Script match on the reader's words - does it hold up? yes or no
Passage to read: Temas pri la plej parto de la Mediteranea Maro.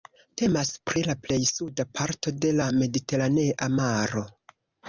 no